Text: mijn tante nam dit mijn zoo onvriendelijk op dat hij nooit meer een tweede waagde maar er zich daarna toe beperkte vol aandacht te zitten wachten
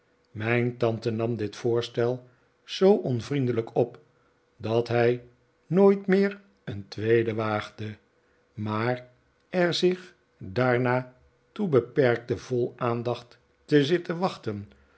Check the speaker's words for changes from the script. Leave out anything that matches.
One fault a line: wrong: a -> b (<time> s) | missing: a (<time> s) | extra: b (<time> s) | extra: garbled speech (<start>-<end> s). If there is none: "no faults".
wrong: mijn -> voorstel (1.6 s)